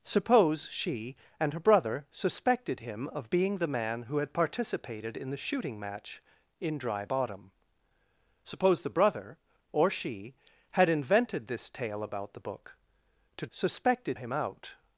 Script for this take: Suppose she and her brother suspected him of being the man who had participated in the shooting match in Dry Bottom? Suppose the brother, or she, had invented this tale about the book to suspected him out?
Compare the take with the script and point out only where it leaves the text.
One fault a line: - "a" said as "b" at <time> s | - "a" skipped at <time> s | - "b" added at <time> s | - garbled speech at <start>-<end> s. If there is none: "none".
none